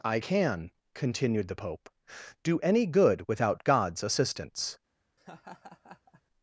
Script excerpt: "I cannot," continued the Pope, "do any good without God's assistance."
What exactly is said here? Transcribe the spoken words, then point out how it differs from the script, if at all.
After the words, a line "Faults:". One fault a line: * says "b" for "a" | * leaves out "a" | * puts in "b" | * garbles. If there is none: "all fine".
"I can," continued the Pope, "do any good without God's assistance."
Faults:
* says "can" for "cannot"